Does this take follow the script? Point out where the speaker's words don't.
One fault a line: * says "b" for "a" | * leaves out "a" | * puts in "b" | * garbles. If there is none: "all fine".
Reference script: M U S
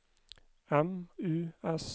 all fine